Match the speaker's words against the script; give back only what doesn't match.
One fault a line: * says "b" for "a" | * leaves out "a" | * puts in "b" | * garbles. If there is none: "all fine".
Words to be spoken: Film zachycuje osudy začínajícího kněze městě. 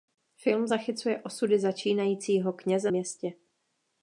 all fine